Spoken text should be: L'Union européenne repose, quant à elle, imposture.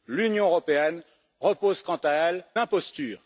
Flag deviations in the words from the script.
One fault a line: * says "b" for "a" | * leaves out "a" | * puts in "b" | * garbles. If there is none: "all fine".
all fine